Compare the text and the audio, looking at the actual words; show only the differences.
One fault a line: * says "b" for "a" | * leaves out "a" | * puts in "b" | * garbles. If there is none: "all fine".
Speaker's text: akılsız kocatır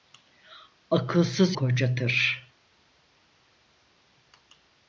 all fine